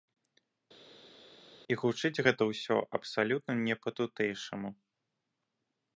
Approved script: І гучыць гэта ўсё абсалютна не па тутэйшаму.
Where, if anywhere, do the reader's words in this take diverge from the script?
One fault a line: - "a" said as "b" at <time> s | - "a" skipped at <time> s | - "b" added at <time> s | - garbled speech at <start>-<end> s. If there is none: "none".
none